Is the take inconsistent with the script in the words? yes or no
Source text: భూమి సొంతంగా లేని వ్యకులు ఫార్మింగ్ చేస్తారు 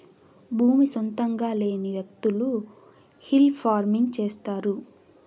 yes